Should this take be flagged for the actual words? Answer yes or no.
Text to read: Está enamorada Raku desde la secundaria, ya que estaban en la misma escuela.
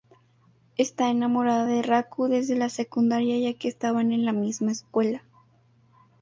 yes